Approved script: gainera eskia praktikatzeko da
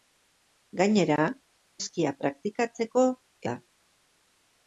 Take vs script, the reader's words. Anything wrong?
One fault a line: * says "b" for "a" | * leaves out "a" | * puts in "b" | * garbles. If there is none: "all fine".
all fine